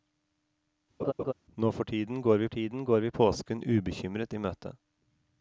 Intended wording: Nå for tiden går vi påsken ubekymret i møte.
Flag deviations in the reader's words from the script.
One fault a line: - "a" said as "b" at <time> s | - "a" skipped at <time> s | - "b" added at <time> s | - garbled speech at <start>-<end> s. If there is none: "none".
- "tiden går vi" added at 2.5 s